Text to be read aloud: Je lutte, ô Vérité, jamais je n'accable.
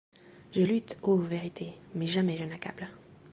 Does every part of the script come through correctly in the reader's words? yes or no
no